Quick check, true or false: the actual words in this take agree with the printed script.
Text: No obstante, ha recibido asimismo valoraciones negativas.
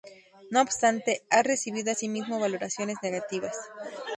true